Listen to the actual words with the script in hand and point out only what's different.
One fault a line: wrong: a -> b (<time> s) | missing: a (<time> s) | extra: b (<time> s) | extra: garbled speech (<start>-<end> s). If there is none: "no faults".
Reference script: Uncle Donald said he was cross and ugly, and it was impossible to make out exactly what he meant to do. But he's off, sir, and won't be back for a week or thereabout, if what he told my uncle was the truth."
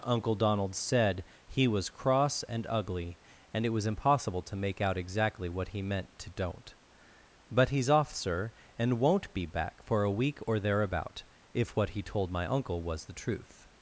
wrong: do -> don't (6.3 s)